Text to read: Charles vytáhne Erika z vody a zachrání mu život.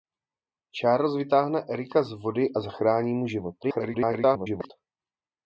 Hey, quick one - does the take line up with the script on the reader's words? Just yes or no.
no